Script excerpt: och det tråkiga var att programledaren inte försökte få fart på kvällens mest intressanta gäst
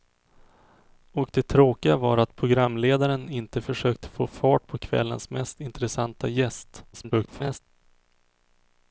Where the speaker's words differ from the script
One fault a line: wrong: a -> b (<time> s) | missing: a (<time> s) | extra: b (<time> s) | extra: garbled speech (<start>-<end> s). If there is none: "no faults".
extra: garbled speech (6.9-7.6 s)